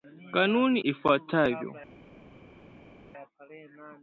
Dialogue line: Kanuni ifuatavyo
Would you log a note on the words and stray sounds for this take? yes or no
no